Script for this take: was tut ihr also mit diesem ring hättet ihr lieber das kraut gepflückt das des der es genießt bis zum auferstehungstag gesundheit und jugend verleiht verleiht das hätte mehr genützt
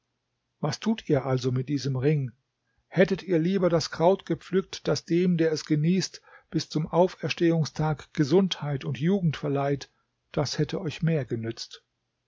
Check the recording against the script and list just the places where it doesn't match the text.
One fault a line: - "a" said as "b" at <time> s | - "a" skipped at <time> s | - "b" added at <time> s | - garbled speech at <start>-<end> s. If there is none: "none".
- "des" said as "dem" at 5.0 s
- "verleiht" skipped at 9.9 s
- "euch" added at 10.8 s